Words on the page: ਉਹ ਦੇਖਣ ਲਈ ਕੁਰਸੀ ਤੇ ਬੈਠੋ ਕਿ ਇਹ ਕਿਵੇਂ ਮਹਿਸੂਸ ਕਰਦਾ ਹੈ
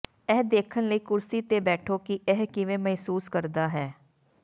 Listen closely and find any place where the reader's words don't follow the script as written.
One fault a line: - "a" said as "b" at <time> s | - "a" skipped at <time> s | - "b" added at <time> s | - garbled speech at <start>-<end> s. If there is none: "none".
- "ਉਹ" said as "ਇਹ" at 0.3 s